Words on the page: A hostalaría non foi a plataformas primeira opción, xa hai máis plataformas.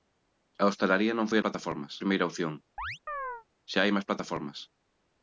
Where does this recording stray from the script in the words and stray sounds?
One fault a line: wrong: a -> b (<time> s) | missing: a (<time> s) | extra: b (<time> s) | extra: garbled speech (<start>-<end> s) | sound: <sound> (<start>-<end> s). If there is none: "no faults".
sound: chirp (2.8-3.4 s)